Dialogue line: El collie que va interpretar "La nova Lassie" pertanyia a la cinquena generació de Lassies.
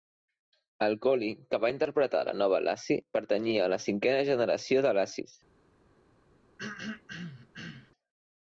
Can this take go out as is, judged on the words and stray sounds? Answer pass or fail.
fail